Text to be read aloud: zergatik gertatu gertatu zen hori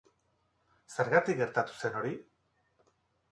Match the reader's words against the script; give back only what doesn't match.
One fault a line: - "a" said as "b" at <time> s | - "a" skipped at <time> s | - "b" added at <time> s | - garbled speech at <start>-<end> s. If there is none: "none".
- "gertatu" skipped at 1.8 s